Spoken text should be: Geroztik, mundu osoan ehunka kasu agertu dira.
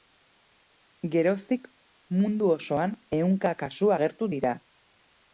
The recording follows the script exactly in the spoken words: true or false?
true